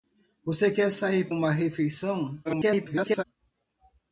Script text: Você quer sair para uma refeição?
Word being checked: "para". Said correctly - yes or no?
no